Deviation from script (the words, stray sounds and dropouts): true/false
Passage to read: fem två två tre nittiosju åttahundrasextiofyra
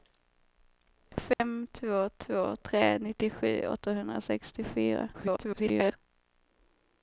true